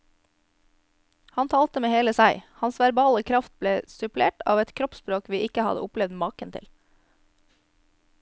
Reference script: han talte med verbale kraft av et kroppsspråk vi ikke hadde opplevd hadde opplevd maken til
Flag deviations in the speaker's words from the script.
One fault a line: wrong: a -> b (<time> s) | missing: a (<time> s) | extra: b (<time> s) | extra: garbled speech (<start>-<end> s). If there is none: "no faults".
extra: hele seg hans (1.9 s)
extra: ble supplert (3.6 s)
missing: hadde opplevd (6.2 s)